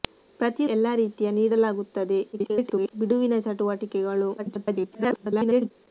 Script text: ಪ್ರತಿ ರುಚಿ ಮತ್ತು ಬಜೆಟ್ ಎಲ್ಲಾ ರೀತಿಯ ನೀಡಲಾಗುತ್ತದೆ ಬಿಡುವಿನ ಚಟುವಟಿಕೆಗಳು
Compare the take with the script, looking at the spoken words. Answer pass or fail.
fail